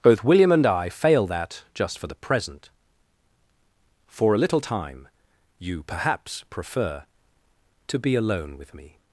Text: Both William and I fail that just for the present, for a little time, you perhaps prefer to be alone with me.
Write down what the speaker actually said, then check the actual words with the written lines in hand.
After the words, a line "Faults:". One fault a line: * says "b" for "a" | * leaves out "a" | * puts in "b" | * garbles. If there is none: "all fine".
Both William and I fail that just for the present, for a little time, you perhaps prefer to be alone with me.
Faults:
all fine